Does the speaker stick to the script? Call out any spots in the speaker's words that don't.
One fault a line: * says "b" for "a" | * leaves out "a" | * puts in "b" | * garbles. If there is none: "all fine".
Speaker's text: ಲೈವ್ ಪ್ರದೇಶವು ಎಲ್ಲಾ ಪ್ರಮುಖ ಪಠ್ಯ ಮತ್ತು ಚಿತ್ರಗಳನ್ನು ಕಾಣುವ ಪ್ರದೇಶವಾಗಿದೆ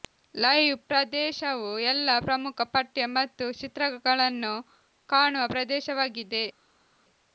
all fine